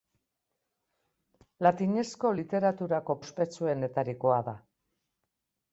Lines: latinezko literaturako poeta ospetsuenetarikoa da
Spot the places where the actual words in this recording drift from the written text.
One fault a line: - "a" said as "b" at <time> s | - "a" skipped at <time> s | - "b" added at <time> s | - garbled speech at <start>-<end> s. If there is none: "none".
- "poeta" skipped at 3.2 s